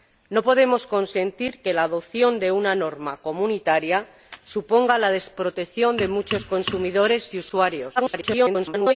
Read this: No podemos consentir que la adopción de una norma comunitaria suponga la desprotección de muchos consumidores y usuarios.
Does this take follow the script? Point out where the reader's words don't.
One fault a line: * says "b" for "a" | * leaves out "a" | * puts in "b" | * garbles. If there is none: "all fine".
* garbles